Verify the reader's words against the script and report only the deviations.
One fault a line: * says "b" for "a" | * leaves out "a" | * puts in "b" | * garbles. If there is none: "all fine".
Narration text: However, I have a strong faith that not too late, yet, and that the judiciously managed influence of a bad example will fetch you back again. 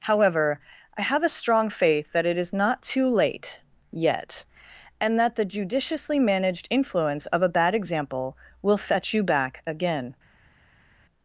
* puts in "it is"